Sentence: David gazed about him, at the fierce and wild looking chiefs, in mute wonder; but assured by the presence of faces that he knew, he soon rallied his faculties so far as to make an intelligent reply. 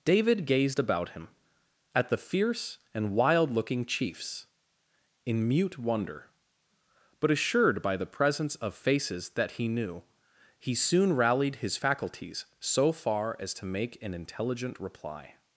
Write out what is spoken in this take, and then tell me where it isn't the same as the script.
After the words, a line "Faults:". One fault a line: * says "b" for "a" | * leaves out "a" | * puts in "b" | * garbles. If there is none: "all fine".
David gazed about him, at the fierce and wild looking chiefs, in mute wonder; but assured by the presence of faces that he knew, he soon rallied his faculties so far as to make an intelligent reply.
Faults:
all fine